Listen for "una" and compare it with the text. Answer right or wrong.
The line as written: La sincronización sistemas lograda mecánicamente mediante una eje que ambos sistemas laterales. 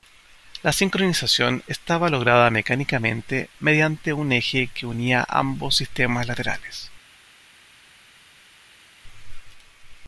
wrong